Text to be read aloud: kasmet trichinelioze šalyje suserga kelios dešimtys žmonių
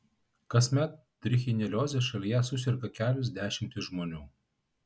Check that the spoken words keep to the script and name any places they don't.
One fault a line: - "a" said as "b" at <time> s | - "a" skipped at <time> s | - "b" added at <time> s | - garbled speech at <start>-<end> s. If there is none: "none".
none